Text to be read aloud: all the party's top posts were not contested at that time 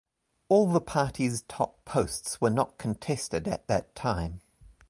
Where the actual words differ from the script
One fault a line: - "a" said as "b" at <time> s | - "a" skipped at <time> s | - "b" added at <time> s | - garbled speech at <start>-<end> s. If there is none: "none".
none